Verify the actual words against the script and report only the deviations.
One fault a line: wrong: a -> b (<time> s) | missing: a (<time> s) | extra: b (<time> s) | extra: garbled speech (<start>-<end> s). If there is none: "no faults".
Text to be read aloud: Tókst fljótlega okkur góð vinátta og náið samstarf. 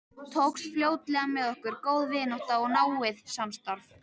extra: með (1.4 s)